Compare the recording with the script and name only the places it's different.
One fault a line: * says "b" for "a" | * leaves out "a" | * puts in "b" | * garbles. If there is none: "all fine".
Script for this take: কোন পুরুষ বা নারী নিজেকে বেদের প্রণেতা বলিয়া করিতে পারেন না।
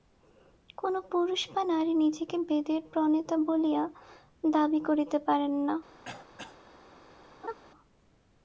* puts in "দাবী"